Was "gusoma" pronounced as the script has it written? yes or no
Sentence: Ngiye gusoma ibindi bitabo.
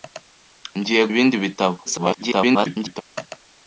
no